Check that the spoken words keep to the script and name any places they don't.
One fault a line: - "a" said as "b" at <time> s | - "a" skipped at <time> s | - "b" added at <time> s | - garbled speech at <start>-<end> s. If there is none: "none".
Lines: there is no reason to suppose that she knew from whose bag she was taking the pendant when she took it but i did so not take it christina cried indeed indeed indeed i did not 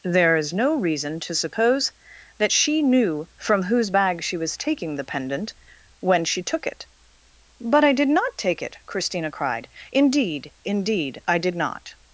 - "so" skipped at 8.1 s
- "indeed" skipped at 11.2 s